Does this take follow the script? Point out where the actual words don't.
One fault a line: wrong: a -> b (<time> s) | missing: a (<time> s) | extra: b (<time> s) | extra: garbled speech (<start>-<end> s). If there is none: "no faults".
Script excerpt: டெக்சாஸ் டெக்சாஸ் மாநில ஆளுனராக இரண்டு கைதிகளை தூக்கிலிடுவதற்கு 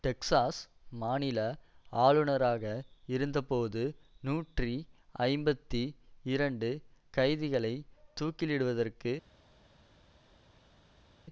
missing: டெக்சாஸ் (0.6 s)
extra: இருந்தபோது நூற்றி ஐம்பத்தி (3.1 s)